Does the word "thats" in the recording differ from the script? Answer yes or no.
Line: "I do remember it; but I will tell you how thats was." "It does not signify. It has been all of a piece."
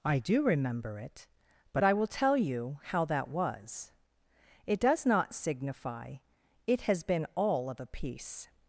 yes